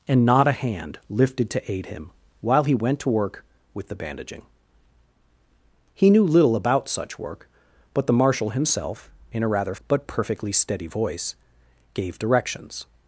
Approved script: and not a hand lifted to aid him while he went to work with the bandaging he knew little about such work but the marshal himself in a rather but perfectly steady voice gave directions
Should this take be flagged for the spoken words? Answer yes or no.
no